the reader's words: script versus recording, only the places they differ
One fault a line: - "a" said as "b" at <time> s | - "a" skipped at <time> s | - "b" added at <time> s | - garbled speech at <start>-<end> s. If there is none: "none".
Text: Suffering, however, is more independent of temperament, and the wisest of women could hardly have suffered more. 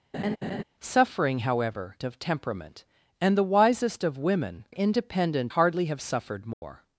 - "is more independent" skipped at 2.0 s
- "could" said as "independent" at 4.7 s